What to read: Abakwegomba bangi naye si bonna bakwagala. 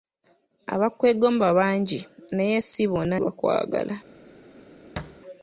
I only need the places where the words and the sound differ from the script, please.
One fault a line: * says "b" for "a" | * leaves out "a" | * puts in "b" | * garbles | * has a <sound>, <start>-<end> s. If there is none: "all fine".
* has a thud, 5.0-5.2 s